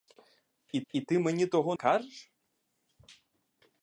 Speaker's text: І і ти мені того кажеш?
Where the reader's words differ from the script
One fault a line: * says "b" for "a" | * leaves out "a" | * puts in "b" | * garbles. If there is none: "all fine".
all fine